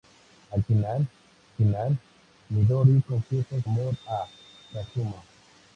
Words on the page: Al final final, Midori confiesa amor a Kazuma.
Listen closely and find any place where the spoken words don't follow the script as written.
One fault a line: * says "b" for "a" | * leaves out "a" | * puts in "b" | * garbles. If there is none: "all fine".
all fine